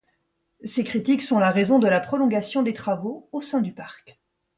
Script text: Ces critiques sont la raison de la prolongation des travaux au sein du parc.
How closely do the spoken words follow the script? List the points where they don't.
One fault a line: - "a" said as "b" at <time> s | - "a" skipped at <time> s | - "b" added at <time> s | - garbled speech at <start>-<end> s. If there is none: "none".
none